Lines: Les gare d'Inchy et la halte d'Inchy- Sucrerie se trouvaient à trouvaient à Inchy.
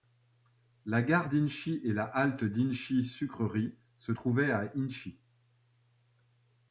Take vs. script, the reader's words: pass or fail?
fail